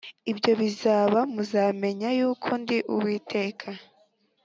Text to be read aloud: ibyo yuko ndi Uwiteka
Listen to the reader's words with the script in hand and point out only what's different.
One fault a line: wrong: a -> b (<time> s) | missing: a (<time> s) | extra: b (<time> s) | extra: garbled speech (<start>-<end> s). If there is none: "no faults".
extra: bizaba muzamenya (0.6 s)